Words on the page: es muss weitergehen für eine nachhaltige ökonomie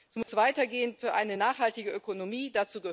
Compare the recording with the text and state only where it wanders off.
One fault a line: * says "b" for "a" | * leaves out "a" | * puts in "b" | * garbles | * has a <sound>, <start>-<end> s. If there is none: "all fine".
* has a dropout, 0.2-0.3 s